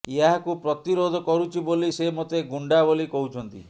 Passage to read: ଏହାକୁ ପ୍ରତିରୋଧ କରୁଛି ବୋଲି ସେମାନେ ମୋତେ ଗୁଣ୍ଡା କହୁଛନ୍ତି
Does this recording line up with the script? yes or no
no